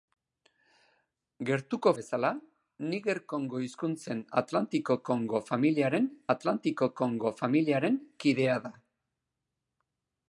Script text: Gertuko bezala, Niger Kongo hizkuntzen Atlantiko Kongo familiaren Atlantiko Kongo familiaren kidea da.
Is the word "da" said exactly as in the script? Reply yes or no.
yes